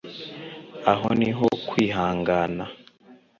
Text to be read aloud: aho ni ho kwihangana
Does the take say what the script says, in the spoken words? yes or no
yes